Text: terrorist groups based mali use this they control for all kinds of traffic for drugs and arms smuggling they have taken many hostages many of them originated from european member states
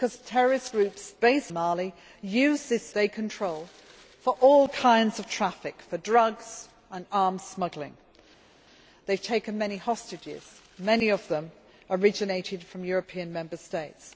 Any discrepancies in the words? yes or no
no